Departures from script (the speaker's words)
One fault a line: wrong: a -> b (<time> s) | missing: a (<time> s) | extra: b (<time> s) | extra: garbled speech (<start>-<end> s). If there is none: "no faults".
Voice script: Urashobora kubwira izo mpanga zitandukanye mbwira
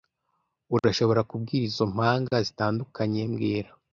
no faults